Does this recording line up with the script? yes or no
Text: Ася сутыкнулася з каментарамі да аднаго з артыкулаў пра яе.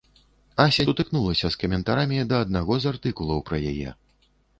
yes